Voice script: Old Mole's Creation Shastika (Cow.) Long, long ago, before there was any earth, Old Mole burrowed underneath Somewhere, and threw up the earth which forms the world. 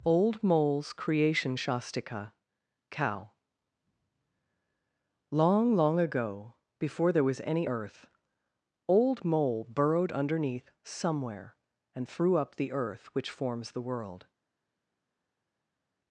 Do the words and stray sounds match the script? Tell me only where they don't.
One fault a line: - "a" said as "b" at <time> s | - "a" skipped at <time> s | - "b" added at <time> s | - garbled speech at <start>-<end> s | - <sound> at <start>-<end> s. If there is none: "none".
none